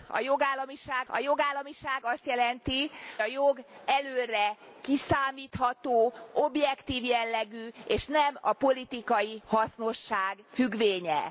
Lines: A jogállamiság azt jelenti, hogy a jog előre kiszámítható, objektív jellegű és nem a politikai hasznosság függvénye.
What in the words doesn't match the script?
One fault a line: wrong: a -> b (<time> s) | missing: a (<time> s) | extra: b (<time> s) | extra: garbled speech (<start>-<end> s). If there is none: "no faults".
extra: a jogállamiság (1.1 s)
missing: hogy (2.9 s)